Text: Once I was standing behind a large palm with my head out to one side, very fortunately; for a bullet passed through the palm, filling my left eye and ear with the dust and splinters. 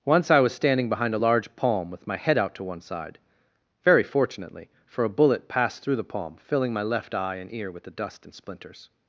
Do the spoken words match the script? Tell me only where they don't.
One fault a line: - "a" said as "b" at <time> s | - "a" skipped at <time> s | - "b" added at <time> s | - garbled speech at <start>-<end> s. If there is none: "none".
none